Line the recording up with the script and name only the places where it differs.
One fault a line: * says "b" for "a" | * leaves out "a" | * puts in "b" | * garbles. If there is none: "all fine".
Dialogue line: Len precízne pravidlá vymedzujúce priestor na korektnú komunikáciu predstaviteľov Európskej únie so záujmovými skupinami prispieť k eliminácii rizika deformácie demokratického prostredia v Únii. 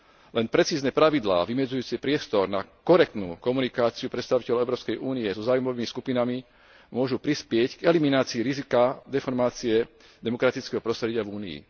* puts in "môžu"